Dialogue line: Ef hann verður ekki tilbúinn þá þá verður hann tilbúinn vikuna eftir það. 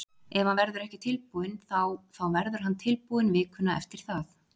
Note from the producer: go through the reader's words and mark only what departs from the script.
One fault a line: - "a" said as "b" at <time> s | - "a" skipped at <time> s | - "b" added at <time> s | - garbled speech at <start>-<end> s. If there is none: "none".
none